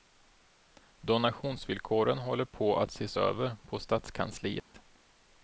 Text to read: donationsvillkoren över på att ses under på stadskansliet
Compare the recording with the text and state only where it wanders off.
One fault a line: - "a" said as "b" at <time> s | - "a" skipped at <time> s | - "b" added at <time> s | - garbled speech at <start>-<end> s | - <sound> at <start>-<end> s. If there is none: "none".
- "över" said as "håller" at 2.2 s
- "under" said as "över" at 3.1 s
- dropout at 4.6-4.7 s